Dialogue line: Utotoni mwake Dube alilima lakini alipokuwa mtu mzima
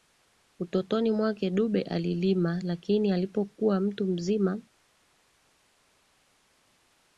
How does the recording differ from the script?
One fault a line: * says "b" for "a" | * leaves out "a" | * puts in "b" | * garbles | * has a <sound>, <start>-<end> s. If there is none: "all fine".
all fine